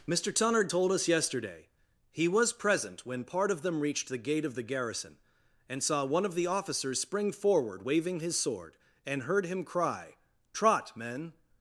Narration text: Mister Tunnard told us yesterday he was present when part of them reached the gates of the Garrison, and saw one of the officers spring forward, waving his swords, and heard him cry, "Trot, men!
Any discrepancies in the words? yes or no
yes